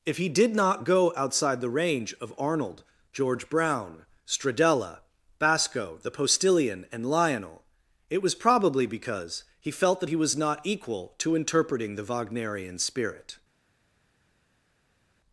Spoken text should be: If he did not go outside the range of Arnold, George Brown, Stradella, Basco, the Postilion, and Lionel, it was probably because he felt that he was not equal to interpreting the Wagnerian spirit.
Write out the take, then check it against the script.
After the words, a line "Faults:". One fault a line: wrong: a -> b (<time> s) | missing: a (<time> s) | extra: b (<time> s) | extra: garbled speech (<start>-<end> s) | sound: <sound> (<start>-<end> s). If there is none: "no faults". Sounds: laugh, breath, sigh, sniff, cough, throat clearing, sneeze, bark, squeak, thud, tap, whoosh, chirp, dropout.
If he did not go outside the range of Arnold, George Brown, Stradella, Basco, the Postilion, and Lionel, it was probably because he felt that he was not equal to interpreting the Wagnerian spirit.
Faults:
no faults